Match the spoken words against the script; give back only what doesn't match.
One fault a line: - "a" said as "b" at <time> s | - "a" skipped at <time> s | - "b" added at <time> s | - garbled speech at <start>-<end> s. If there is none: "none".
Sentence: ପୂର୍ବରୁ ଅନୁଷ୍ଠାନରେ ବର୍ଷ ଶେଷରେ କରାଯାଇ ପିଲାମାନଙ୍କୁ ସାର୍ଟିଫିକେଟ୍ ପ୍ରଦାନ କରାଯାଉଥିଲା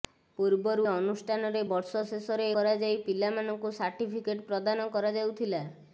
none